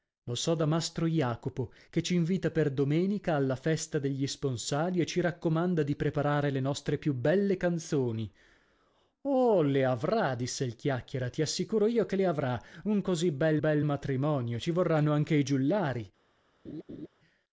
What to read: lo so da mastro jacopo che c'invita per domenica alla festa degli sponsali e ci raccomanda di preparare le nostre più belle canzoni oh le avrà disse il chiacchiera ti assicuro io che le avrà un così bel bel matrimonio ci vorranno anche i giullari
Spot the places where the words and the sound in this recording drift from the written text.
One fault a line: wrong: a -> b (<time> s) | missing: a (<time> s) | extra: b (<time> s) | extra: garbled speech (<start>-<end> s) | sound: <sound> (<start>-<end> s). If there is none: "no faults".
sound: laugh (16.6-17.1 s)